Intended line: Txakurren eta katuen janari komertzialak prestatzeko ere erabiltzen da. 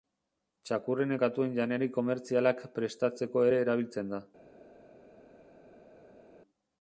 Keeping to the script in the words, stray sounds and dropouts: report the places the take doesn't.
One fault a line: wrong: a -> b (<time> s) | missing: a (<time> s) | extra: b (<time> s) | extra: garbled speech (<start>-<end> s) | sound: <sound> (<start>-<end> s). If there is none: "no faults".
missing: eta (1.1 s)